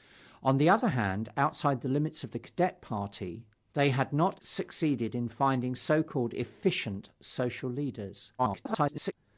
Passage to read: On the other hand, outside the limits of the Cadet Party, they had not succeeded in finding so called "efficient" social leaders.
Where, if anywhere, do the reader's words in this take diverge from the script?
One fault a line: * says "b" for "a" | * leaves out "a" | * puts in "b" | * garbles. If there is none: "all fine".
* garbles